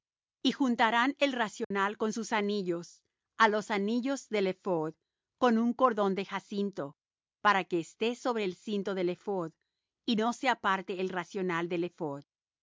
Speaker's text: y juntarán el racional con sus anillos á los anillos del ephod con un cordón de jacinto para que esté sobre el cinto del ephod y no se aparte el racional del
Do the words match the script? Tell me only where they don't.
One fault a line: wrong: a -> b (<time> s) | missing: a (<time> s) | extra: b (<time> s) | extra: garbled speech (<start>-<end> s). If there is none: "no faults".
no faults